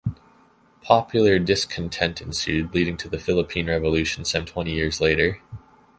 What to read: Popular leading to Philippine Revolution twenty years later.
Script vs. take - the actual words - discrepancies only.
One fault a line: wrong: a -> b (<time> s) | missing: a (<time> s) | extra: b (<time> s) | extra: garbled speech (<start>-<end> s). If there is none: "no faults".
extra: discontent ensued (1.4 s)
extra: the (3.1 s)
extra: some (4.2 s)